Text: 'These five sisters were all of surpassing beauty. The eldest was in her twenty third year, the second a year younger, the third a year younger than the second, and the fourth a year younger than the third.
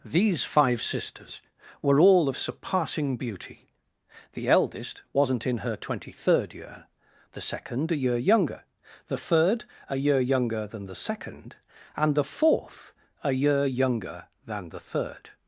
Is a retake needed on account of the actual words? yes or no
yes